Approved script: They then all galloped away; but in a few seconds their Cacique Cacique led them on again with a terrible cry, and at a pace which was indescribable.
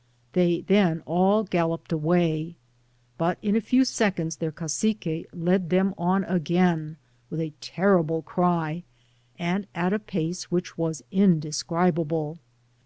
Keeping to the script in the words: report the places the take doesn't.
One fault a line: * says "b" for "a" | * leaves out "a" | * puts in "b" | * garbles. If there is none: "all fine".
* leaves out "Cacique"